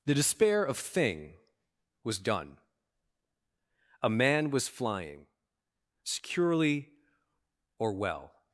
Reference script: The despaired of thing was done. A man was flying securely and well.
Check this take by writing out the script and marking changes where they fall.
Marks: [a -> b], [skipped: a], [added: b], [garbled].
The [despaired -> despair] of thing was done. A man was flying securely [and -> or] well.